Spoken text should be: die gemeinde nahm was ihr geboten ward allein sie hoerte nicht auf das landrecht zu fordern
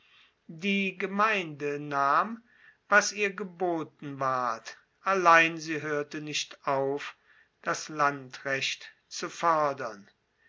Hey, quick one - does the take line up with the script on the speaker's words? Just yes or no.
yes